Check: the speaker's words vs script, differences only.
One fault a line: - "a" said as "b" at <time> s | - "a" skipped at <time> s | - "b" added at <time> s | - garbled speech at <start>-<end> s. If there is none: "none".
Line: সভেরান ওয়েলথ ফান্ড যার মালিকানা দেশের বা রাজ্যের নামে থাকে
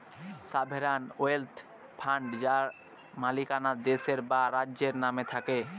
none